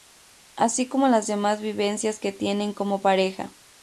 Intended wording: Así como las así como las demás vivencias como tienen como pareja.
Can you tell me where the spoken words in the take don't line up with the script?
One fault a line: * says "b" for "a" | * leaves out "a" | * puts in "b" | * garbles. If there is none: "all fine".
* leaves out "así como las"
* says "que" for "como"